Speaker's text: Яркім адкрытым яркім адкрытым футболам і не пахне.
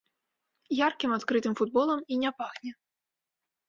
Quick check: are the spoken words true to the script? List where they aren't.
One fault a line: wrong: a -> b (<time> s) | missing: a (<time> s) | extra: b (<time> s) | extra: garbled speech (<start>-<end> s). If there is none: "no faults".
missing: яркім адкрытым (1.5 s)